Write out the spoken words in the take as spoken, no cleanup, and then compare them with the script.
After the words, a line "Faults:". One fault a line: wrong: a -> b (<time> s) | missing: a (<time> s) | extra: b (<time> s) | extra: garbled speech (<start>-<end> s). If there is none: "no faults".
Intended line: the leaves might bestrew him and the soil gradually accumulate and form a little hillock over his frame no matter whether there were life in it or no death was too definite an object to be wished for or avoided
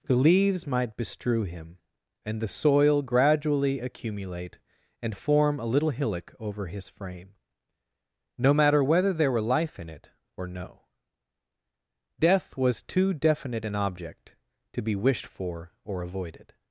the leaves might bestrew him and the soil gradually accumulate and form a little hillock over his frame no matter whether there were life in it or no death was too definite an object to be wished for or avoided
Faults:
no faults